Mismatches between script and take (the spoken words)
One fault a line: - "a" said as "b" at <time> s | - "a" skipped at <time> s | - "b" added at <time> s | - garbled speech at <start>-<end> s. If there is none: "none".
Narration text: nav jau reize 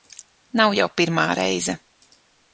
- "pirmā" added at 1.0 s